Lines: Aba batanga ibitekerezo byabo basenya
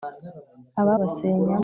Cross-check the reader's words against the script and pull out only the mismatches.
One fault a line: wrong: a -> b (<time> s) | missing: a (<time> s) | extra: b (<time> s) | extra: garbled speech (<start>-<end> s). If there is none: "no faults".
missing: batanga ibitekerezo byabo (0.9 s)